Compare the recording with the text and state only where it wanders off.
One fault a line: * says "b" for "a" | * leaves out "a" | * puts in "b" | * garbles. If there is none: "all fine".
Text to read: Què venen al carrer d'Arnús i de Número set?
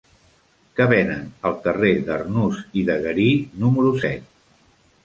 * puts in "Garí"